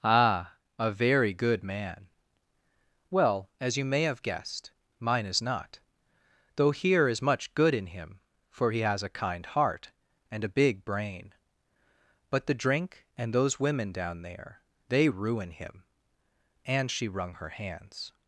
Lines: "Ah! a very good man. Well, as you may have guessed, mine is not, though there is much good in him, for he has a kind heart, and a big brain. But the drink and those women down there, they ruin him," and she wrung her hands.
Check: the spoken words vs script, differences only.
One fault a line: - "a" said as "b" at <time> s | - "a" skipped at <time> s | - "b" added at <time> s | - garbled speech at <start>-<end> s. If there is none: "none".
- "there" said as "here" at 6.7 s